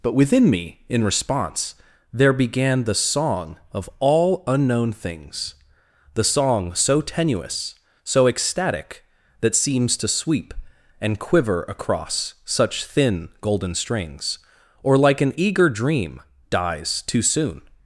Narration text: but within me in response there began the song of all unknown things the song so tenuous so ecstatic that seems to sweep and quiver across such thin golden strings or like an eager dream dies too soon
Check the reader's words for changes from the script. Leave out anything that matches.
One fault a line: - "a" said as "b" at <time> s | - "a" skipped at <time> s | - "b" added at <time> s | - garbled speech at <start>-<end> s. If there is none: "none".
none